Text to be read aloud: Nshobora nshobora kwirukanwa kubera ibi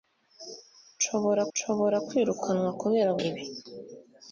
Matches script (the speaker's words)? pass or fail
pass